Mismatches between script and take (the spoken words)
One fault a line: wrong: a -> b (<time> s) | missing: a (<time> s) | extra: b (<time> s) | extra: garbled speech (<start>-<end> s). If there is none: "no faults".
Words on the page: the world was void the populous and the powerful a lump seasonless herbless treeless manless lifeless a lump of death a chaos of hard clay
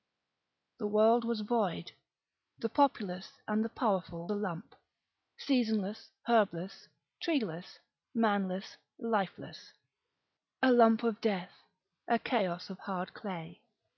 no faults